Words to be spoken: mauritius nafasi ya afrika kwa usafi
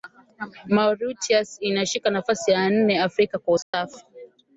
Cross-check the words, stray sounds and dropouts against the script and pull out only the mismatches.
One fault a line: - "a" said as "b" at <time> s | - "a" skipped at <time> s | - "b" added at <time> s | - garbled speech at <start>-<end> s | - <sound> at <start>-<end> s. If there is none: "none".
- "inashika" added at 1.6 s
- "nne" added at 2.7 s
- dropout at 3.6-3.7 s